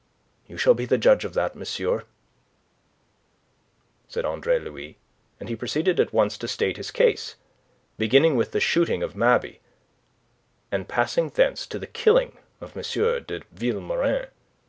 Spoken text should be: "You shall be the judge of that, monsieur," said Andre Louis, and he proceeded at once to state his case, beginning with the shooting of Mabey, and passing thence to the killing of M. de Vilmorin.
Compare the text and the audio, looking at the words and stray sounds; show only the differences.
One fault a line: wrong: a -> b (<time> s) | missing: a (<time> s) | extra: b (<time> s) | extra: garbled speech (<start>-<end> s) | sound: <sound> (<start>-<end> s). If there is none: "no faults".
no faults